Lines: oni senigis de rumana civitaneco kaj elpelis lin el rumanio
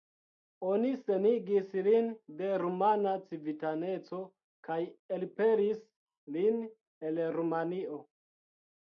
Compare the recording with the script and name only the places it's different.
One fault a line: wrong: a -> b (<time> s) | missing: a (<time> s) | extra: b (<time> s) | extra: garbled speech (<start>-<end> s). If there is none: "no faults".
extra: lin (1.9 s)